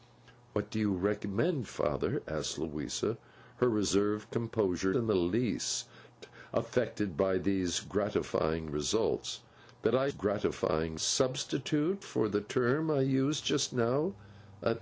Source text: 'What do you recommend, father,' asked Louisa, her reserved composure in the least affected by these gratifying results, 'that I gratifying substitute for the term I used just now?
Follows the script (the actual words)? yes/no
yes